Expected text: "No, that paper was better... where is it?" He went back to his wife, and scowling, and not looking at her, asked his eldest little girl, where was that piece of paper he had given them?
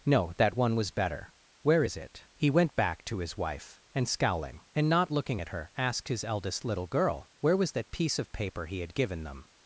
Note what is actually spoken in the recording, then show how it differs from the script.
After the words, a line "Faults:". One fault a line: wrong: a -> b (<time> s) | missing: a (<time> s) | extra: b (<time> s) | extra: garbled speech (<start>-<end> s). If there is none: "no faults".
"No, that one was better... where is it?" He went back to his wife, and scowling, and not looking at her, asked his eldest little girl, where was that piece of paper he had given them?
Faults:
wrong: paper -> one (0.6 s)